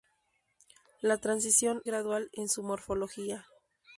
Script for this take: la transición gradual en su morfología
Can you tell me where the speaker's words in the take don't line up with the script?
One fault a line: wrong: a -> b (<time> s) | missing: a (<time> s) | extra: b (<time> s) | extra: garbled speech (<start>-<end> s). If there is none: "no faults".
no faults